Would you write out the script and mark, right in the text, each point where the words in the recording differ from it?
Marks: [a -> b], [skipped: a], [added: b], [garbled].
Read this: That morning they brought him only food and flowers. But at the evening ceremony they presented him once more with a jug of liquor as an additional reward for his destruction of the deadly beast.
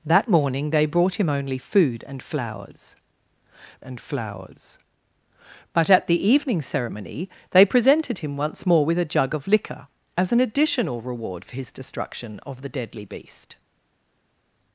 That morning they brought him only food and flowers. [added: and flowers] But at the evening ceremony they presented him once more with a jug of liquor as an additional reward for his destruction of the deadly beast.